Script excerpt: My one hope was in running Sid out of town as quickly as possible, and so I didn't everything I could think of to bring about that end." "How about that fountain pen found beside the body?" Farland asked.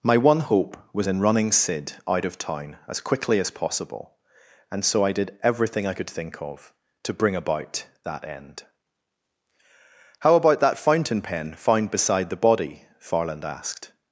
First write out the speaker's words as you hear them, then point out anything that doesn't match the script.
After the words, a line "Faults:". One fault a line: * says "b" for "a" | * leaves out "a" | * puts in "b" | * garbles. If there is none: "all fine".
My one hope was in running Sid out of town as quickly as possible, and so I did everything I could think of to bring about that end." "How about that fountain pen found beside the body?" Farland asked.
Faults:
* says "did" for "didn't"